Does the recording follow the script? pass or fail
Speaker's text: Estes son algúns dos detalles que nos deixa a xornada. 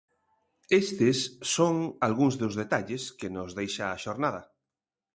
pass